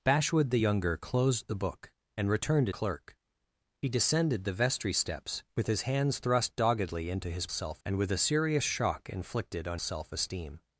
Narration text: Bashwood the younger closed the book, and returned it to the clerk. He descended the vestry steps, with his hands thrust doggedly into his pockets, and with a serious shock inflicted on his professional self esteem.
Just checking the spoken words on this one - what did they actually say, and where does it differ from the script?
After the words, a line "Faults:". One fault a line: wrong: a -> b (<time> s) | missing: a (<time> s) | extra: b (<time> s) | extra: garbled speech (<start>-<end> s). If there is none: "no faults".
Bashwood the younger closed the book, and returned clerk. He descended the vestry steps, with his hands thrust doggedly into his self, and with a serious shock inflicted on self esteem.
Faults:
missing: it to the (2.7 s)
wrong: pockets -> self (7.5 s)
missing: his professional (9.8 s)